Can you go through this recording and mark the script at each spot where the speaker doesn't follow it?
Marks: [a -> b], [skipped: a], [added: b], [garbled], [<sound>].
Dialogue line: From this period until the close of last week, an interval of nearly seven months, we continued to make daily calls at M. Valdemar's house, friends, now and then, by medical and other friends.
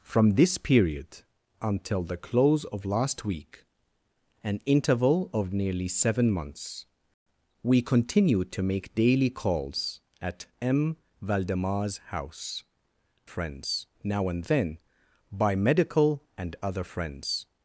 From this period until the close of last week, an interval of nearly seven months, we continued to make daily calls at M. Valdemar's house, friends, now and then, by medical and other friends.